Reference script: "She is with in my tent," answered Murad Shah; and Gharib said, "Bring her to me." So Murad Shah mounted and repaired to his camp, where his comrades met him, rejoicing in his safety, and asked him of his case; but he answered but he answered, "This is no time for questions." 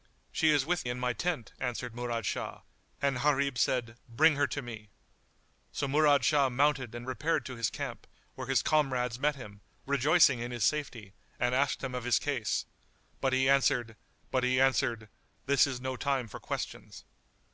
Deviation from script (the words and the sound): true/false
false